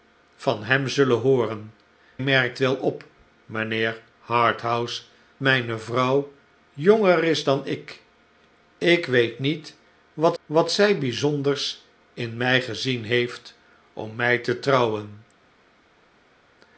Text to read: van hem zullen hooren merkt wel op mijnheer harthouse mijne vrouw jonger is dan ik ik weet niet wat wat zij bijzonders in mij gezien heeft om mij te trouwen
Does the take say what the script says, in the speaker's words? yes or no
yes